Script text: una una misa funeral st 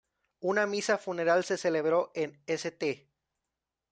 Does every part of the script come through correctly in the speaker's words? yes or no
no